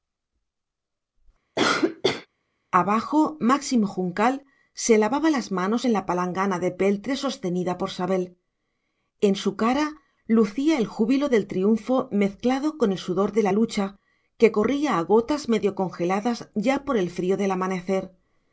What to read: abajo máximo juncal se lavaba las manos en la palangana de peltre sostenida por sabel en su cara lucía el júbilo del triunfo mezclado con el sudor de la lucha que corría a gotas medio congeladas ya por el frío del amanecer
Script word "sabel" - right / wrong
right